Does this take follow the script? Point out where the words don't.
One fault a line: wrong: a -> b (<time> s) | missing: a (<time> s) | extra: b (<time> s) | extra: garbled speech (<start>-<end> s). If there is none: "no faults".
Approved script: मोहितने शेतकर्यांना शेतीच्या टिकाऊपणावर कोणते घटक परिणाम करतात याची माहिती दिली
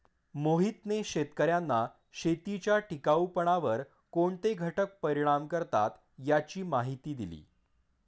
no faults